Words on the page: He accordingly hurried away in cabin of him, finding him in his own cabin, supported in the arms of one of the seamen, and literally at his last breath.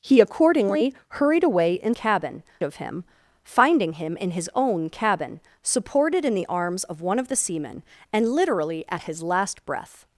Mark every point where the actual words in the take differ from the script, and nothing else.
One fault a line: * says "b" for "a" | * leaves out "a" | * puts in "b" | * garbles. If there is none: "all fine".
all fine